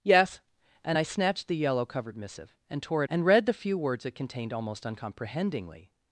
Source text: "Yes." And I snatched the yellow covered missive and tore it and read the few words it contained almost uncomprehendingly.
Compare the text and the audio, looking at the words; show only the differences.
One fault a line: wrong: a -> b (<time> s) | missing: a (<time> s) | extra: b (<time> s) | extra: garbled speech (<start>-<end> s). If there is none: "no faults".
no faults